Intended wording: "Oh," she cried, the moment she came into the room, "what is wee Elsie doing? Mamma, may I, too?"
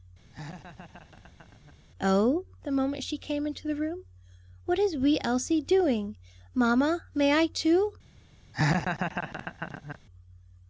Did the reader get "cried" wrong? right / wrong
wrong